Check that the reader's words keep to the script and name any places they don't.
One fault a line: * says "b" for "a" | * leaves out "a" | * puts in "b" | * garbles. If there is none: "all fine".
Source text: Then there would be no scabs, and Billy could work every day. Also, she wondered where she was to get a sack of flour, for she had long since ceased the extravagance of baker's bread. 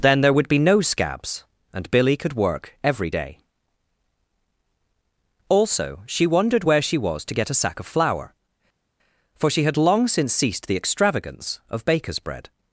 all fine